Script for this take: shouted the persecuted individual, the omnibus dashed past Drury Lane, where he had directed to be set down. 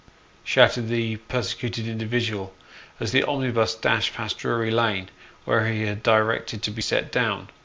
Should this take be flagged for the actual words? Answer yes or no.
yes